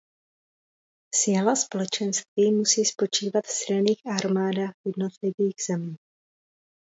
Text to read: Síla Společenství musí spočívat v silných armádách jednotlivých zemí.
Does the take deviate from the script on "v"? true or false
false